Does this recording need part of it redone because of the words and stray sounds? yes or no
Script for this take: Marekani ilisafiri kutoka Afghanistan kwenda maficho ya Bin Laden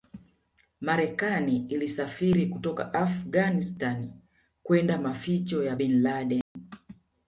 yes